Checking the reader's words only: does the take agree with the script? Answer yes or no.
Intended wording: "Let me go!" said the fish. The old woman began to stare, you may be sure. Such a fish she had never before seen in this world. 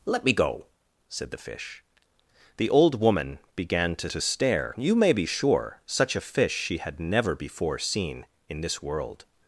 no